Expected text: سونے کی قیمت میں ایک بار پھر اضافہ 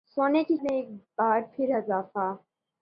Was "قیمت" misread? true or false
true